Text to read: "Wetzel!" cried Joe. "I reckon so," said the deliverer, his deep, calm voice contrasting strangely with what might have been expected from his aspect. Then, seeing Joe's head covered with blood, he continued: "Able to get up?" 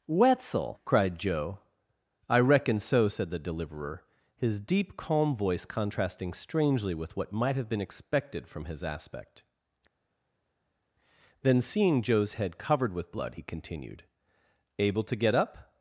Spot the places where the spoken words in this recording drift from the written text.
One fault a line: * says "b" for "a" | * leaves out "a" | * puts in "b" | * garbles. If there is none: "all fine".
all fine